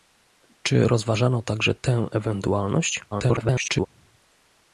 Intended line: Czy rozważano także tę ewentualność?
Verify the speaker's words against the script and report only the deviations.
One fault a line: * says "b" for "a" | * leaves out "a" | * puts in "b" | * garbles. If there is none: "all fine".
* garbles